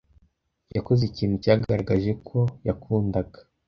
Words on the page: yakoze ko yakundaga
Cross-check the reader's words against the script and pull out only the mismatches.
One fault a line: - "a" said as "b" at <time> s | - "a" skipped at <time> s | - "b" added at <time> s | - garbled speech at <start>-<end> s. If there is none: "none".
- "ikintu cyagaragaje" added at 1.1 s